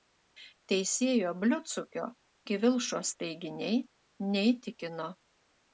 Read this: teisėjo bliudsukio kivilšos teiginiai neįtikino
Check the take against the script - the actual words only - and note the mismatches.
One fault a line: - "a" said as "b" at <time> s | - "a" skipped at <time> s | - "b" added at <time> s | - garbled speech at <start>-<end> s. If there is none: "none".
none